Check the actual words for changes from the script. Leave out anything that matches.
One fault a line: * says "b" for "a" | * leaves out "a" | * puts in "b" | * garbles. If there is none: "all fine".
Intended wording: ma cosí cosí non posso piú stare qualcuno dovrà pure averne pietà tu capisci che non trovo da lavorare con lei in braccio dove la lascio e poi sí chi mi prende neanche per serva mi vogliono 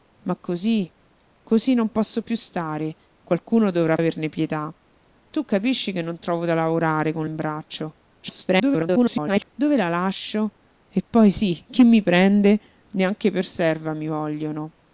* leaves out "pure"
* leaves out "lei"
* garbles